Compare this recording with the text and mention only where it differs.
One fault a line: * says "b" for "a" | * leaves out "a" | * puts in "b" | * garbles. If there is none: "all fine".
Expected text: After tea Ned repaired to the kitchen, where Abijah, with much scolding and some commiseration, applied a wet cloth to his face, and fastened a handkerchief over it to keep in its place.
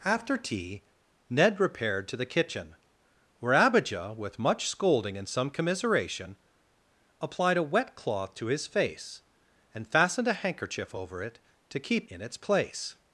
all fine